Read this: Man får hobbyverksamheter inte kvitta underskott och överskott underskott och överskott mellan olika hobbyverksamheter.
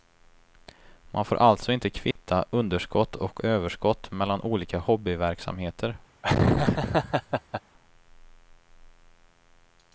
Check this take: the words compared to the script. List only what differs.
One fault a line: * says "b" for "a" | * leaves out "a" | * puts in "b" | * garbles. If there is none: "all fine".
* says "alltså" for "hobbyverksamheter"
* leaves out "underskott och överskott"